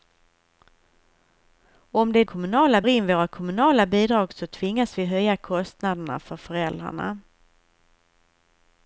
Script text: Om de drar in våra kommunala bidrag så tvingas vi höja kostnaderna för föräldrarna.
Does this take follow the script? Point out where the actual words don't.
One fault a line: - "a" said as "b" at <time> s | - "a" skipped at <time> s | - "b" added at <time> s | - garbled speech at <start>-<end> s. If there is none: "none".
- "drar" said as "kommunala" at 2.2 s